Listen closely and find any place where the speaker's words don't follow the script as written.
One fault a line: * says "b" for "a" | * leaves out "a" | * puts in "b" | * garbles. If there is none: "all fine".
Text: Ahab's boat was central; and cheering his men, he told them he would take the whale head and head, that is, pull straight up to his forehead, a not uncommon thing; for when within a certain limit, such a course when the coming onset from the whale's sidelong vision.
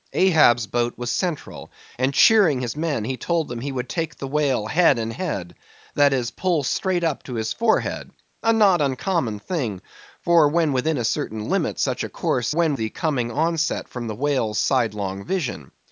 all fine